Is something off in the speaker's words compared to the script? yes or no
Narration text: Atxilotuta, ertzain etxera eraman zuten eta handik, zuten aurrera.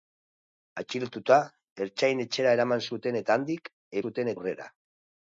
no